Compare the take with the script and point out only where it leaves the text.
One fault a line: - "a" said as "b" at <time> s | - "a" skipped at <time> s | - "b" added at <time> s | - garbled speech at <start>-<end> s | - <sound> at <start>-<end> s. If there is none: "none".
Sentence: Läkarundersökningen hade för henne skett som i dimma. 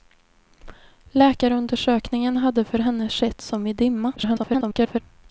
- garbled speech at 4.2-5.0 s